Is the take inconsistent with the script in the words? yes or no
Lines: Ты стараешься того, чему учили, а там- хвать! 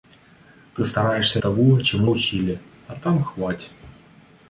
no